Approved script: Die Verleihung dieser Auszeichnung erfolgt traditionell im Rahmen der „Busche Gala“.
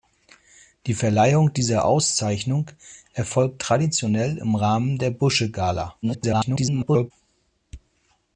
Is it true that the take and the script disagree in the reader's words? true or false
true